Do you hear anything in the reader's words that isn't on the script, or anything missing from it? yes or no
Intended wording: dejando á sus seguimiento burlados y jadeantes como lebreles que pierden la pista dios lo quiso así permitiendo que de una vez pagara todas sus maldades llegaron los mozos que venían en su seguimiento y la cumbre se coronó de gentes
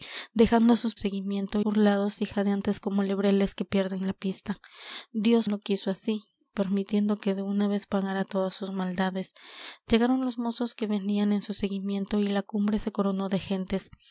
no